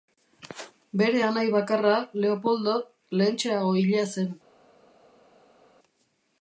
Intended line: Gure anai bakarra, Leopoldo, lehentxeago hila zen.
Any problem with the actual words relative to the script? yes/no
yes